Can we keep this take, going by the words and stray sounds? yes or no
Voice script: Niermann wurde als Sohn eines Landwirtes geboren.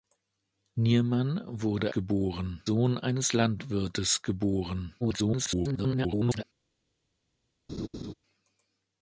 no